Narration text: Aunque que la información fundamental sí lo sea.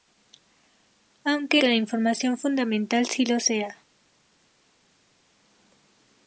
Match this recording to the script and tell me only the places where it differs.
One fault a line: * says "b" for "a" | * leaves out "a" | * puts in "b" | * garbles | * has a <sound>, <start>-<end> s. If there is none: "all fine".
all fine